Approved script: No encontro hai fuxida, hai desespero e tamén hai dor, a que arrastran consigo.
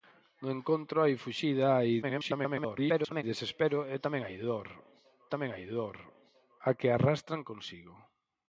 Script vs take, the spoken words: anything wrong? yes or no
yes